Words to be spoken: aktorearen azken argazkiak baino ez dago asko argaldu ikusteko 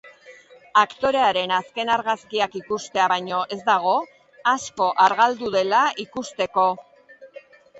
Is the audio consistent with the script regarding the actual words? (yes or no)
no